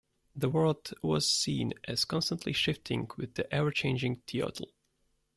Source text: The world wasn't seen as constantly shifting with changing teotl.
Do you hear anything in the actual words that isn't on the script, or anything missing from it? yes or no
yes